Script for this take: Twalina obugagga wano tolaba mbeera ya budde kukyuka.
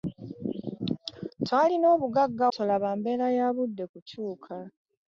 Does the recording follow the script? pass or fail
fail